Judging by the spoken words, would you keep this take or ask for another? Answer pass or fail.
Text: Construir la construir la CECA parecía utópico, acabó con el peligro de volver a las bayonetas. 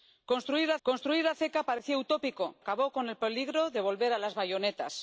pass